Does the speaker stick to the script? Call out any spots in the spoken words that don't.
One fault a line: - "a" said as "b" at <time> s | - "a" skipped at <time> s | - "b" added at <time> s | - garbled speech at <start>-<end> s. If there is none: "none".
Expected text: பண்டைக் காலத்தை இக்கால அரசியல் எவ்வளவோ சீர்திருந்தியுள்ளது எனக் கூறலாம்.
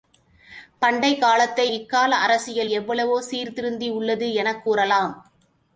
none